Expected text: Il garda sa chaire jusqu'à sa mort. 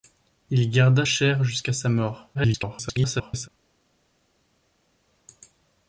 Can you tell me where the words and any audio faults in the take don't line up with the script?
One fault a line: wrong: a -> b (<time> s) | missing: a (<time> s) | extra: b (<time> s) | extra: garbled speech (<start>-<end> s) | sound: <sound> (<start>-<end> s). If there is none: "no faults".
missing: sa (1.1 s)
extra: garbled speech (2.3-3.5 s)